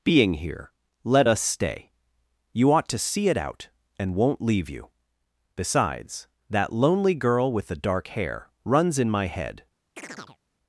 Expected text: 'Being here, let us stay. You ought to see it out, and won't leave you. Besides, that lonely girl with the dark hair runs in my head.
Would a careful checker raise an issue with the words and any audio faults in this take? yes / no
yes